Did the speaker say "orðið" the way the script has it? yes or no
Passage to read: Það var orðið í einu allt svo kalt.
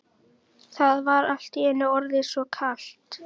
no